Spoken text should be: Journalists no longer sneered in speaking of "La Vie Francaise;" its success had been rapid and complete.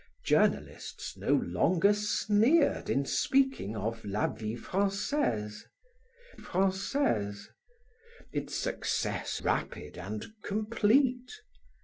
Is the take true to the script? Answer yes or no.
no